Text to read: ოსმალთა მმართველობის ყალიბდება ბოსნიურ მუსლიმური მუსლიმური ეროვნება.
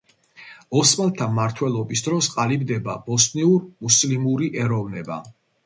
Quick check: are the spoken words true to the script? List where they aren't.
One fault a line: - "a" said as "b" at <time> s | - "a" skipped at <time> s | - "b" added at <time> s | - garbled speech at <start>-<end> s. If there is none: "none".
- "დროს" added at 2.1 s
- "მუსლიმური" skipped at 4.5 s